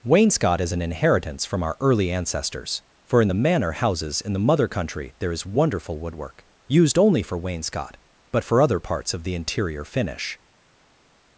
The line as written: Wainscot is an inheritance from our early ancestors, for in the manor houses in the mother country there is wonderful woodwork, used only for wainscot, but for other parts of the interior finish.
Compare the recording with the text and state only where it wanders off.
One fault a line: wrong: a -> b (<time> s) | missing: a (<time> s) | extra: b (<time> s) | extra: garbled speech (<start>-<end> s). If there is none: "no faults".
no faults